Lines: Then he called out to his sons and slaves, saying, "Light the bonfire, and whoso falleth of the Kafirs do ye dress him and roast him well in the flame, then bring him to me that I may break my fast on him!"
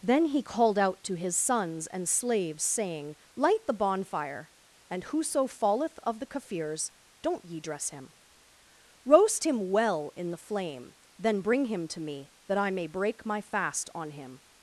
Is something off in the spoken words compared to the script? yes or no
yes